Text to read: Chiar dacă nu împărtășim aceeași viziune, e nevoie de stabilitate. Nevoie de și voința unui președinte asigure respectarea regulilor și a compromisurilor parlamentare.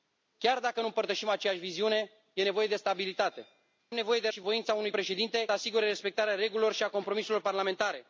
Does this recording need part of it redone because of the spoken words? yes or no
no